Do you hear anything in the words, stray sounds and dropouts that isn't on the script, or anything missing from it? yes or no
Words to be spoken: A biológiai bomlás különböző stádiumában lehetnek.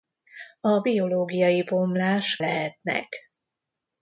yes